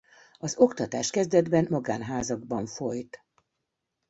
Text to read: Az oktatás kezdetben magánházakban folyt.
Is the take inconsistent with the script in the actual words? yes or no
no